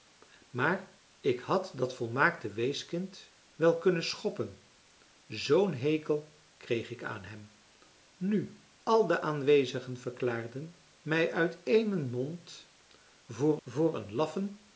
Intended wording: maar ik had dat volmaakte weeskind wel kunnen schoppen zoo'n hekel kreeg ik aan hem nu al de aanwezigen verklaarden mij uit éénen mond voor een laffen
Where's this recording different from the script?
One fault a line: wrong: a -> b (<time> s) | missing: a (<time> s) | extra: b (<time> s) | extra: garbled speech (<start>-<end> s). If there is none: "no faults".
extra: voor (13.6 s)